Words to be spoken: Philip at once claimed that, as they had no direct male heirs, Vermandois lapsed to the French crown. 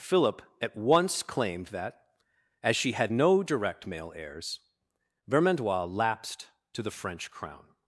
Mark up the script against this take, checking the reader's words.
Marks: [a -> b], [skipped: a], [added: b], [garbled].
Philip at once claimed that, as [they -> she] had no direct male heirs, Vermandois lapsed to the French crown.